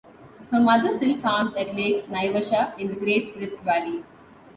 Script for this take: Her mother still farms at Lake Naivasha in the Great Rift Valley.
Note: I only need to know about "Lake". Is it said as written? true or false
true